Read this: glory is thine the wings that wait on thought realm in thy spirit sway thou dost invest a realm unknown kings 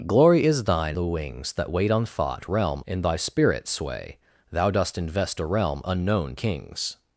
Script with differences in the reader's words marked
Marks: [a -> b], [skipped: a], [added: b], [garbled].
glory is thine the wings that wait on thought realm in thy spirit sway thou dost invest a realm unknown kings